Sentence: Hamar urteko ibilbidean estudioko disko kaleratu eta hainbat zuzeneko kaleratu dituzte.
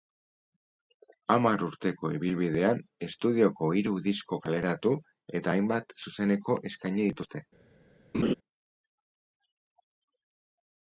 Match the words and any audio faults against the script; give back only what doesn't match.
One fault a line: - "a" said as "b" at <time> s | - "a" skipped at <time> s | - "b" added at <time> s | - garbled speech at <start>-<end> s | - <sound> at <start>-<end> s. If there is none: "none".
- "hiru" added at 3.8 s
- "kaleratu" said as "eskaini" at 6.7 s
- laugh at 8.1-8.3 s